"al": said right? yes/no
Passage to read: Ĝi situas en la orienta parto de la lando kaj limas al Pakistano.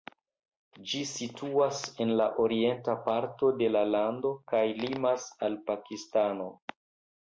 yes